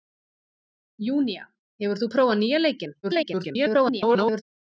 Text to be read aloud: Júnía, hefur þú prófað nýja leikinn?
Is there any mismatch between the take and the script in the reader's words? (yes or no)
yes